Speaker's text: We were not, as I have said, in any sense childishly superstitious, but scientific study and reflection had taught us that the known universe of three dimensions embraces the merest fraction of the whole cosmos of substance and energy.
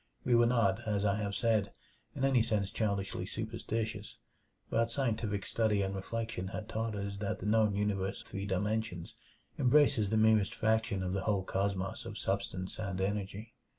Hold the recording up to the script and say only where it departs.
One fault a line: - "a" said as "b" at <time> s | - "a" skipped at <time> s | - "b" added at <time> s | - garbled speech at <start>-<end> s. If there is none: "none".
- "of" skipped at 8.2 s